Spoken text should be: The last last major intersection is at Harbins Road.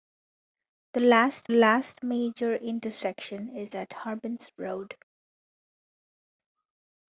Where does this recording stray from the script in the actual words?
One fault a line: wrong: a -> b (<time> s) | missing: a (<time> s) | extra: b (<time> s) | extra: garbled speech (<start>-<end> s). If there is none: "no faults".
no faults